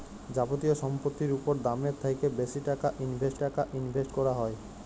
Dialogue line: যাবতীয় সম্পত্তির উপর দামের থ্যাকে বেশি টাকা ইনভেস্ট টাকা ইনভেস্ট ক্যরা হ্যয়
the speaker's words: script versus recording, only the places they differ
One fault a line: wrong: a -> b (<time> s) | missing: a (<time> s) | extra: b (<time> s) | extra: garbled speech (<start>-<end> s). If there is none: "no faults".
no faults